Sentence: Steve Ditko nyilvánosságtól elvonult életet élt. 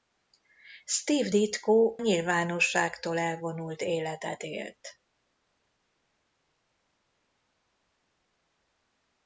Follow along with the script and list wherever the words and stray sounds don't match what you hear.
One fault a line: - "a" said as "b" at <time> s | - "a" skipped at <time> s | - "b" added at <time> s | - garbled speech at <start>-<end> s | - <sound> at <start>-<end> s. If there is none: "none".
none